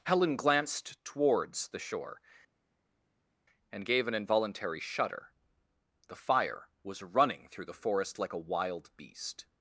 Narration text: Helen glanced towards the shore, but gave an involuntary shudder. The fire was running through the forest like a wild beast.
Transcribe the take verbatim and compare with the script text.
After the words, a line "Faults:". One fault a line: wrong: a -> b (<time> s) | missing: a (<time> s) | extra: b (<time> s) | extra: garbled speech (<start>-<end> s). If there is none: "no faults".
Helen glanced towards the shore, and gave an involuntary shudder. The fire was running through the forest like a wild beast.
Faults:
wrong: but -> and (3.7 s)